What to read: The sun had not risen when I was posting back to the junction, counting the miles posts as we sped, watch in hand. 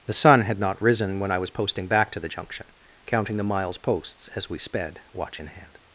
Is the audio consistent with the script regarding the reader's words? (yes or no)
yes